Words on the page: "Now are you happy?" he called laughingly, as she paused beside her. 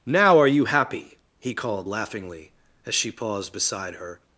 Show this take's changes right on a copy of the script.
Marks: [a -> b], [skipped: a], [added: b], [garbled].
"Now are you happy?" he called laughingly, as she paused beside her.